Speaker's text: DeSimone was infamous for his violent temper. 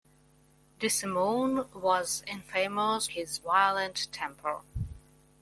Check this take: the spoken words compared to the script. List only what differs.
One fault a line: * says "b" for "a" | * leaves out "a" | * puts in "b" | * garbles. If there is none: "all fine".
* leaves out "for"